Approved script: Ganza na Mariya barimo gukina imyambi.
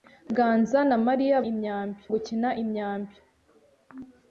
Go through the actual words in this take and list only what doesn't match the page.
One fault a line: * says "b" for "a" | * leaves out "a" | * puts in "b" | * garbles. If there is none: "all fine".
* says "imyambi" for "barimo"